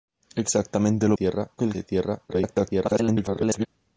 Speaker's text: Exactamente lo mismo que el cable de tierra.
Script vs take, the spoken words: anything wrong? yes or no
yes